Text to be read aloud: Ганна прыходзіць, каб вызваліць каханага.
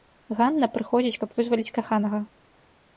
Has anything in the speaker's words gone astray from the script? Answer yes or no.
no